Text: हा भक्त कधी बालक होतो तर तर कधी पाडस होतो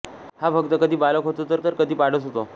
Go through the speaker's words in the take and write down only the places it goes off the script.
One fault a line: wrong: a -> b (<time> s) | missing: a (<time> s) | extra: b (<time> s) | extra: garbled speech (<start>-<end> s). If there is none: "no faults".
no faults